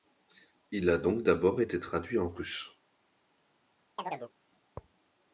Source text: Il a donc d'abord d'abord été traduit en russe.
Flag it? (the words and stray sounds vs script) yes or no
yes